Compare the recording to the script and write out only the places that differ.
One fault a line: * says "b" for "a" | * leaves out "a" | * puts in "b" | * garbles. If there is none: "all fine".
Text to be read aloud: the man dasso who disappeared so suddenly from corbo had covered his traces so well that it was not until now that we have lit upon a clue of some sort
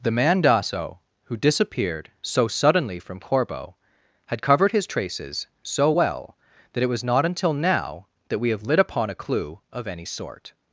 * says "any" for "some"